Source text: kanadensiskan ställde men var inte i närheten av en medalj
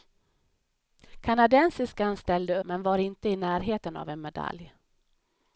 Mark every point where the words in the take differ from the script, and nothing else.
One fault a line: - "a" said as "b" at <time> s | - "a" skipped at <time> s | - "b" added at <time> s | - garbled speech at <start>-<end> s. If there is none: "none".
none